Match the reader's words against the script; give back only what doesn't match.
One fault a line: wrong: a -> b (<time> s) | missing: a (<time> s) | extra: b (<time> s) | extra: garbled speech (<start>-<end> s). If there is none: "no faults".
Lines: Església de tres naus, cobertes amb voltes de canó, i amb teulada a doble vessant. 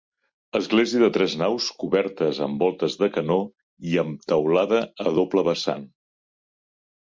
no faults